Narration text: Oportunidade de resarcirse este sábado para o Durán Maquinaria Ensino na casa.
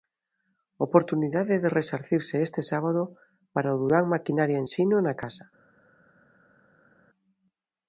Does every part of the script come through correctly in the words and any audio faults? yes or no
yes